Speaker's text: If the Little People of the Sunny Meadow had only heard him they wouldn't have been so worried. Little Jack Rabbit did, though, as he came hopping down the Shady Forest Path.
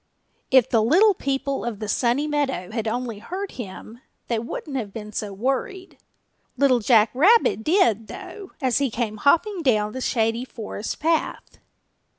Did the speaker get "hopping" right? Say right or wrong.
right